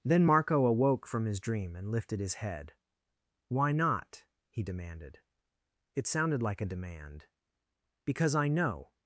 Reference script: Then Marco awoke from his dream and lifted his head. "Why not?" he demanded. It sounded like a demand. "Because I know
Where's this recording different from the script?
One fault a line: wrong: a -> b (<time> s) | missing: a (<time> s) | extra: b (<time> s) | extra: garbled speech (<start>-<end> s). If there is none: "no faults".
no faults